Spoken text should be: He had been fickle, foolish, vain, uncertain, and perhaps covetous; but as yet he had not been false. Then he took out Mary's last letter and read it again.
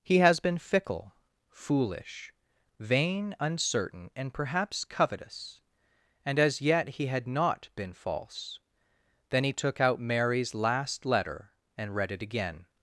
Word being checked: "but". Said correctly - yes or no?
no